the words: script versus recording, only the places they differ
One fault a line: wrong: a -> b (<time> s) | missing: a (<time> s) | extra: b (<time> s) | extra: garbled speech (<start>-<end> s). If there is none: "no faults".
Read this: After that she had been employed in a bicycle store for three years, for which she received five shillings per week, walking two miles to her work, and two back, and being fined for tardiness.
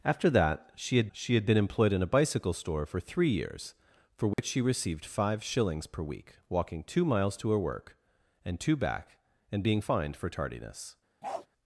extra: she had (1.1 s)